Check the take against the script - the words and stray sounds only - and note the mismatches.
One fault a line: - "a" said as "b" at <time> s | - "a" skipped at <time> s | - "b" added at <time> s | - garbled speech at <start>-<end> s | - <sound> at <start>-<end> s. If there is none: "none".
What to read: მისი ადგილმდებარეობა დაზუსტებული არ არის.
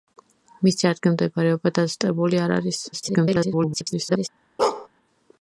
- garbled speech at 2.9-4.3 s
- bark at 4.6-4.9 s